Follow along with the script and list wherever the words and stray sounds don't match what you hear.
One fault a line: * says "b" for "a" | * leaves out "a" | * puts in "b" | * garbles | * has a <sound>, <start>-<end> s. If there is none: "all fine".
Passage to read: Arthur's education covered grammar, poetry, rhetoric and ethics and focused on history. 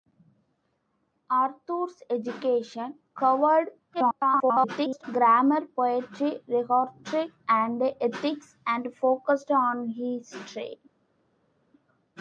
* garbles